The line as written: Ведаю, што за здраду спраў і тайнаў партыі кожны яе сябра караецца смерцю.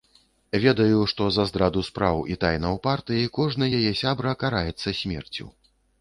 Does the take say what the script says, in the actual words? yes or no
yes